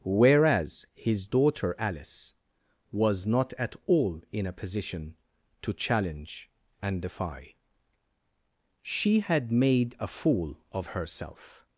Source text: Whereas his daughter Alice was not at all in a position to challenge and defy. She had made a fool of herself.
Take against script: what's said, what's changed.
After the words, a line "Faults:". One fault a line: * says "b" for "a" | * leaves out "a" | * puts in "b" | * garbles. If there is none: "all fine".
Whereas his daughter Alice was not at all in a position to challenge and defy. She had made a fool of herself.
Faults:
all fine